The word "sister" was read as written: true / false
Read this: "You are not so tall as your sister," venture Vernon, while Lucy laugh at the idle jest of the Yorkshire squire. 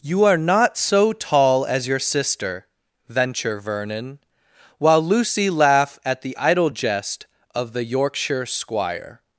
true